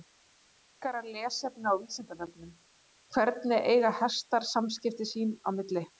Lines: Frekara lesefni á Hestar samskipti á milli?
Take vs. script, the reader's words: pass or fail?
fail